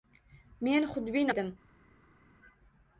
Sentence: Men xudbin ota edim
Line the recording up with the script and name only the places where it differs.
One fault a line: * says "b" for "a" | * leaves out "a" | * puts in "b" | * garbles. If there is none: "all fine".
* leaves out "ota"